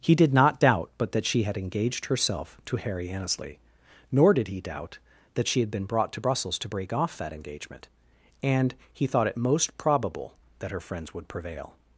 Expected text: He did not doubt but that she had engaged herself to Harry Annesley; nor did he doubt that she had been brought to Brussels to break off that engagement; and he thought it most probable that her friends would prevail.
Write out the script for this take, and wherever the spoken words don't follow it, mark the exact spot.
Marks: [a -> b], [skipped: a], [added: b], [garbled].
He did not doubt but that she had engaged herself to Harry Annesley; nor did he doubt that she had been brought to Brussels to break off that engagement; and he thought it most probable that her friends would prevail.